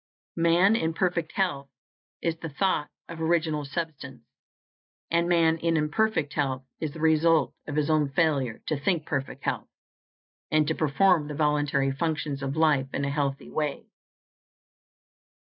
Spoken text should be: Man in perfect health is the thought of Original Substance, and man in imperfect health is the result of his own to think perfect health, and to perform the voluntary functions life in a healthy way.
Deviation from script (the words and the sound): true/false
true